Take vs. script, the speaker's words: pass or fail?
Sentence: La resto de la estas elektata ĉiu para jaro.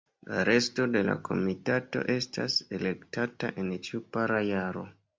fail